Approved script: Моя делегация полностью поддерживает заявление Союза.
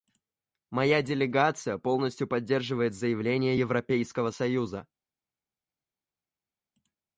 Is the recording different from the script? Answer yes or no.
yes